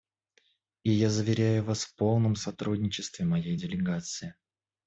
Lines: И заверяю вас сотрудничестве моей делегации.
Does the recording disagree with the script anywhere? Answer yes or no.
yes